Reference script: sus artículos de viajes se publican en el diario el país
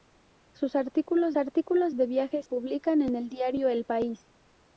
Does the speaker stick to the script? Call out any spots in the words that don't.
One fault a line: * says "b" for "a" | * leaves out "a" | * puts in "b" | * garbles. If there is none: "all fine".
* puts in "artículos"
* leaves out "se"